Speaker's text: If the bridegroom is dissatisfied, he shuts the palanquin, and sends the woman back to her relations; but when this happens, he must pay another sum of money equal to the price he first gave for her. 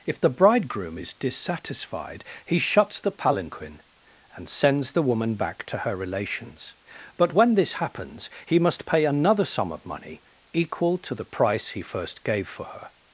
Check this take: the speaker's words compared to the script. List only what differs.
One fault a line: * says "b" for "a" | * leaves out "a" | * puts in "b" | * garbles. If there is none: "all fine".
all fine